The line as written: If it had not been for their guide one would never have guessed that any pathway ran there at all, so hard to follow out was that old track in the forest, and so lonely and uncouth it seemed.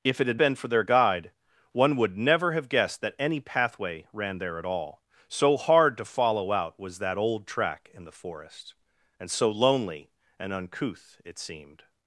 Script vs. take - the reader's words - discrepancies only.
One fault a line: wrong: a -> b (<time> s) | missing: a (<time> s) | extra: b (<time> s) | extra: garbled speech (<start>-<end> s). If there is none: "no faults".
missing: not (0.4 s)